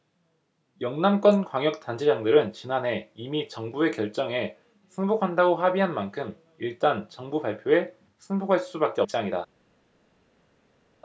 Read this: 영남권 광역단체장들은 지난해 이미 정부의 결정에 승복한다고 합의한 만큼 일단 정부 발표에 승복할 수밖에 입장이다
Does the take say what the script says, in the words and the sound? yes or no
yes